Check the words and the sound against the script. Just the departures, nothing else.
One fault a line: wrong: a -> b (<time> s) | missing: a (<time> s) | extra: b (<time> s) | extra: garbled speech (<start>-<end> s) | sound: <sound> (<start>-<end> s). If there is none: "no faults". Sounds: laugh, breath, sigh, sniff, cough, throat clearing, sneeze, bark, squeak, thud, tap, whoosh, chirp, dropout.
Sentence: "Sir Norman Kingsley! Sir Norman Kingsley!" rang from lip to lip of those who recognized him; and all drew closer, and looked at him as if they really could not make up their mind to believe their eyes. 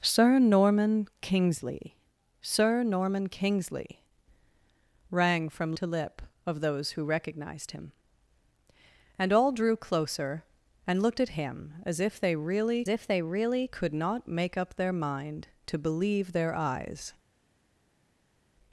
missing: lip (5.8 s)
extra: if they really (12.9 s)